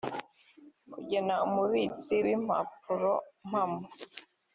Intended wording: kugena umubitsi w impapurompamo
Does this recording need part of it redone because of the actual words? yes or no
no